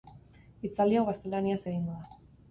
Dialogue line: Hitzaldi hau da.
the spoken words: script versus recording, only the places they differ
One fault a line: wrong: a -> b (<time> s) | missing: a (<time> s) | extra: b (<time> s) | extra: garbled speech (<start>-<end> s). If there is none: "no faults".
extra: gaztelaniaz egingo (1.1 s)